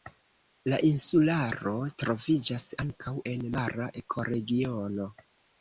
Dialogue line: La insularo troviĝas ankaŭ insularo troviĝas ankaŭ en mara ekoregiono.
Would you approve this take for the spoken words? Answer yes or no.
no